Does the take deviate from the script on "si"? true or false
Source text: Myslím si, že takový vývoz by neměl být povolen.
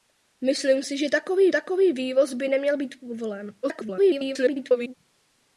false